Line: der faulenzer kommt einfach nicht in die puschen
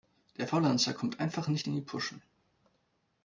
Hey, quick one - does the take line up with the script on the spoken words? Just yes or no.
yes